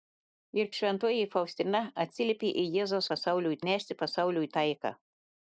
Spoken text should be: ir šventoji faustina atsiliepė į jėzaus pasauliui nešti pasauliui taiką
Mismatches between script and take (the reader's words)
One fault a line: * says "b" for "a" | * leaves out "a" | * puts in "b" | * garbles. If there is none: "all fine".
all fine